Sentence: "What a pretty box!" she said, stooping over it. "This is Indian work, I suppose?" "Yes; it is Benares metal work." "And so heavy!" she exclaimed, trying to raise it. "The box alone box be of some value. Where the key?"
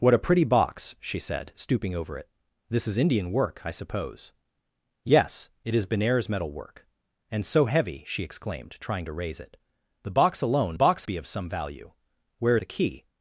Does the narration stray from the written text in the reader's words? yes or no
no